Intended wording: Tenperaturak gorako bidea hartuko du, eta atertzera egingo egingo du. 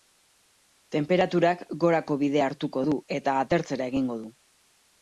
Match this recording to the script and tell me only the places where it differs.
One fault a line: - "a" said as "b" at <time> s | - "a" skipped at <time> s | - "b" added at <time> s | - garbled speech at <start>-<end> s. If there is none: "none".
- "egingo" skipped at 4.2 s